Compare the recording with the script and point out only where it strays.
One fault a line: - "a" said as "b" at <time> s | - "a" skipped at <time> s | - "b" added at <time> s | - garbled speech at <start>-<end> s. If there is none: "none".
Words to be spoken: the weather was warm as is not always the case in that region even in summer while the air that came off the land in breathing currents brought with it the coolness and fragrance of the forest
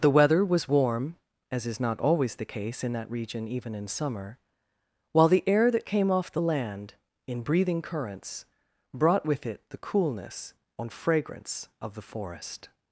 none